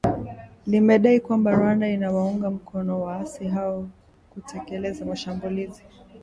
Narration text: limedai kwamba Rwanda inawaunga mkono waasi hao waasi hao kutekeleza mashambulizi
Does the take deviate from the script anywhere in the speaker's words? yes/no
yes